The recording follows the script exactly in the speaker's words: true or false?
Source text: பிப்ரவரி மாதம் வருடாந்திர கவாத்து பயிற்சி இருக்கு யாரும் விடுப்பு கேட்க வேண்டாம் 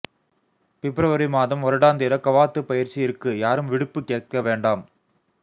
true